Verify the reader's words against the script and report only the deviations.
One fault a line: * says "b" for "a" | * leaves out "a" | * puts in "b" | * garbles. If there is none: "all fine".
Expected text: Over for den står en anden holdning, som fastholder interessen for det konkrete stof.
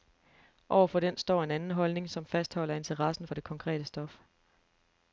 all fine